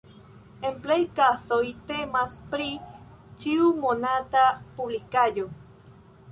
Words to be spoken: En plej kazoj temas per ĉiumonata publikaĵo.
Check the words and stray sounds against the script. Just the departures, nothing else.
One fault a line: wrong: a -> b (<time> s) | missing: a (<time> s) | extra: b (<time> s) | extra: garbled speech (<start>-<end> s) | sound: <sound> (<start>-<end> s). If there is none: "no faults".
wrong: per -> pri (2.5 s)